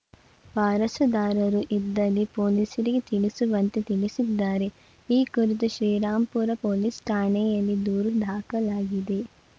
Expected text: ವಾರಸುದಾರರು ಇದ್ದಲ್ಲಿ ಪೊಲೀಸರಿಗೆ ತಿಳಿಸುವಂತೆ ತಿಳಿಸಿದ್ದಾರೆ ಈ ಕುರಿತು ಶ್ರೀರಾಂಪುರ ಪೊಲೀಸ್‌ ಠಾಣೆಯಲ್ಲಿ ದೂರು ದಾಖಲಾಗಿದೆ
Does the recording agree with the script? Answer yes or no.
yes